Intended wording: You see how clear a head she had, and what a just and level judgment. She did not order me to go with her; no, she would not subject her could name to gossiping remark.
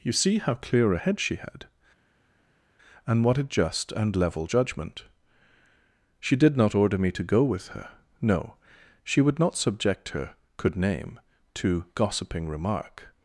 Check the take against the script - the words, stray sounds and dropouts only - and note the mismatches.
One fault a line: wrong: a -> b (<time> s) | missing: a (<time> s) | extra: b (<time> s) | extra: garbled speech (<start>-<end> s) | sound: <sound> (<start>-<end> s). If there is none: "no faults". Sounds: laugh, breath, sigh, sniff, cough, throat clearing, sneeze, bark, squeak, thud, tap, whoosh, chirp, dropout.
no faults